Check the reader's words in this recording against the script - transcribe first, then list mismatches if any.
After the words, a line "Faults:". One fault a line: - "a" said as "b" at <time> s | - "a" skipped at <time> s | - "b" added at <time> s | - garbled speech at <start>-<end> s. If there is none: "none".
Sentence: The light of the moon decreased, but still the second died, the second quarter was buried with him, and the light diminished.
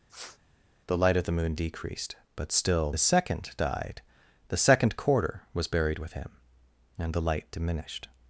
The light of the moon decreased, but still the second died, the second quarter was buried with him, and the light diminished.
Faults:
none